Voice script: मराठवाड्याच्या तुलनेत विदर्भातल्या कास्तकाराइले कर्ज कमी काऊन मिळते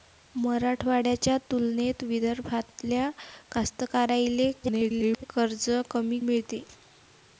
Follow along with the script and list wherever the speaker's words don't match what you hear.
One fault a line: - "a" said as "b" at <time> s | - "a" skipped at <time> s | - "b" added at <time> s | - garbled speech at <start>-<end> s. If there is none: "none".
- garbled speech at 4.6-5.2 s
- "काऊन" skipped at 6.2 s